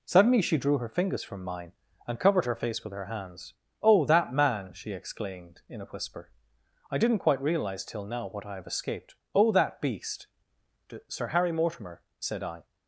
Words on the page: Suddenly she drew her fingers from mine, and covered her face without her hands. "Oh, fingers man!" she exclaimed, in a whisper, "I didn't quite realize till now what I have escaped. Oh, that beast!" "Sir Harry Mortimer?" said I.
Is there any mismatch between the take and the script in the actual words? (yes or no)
yes